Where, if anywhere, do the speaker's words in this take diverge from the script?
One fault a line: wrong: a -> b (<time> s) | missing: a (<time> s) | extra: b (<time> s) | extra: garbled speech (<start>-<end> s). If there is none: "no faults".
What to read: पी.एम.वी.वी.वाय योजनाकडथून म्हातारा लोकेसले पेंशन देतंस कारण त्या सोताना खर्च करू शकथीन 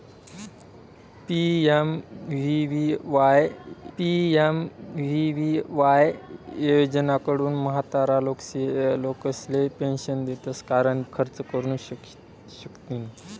extra: पी.एम.वी.वी.वाय (4.0 s)
missing: त्या सोताना (11.0 s)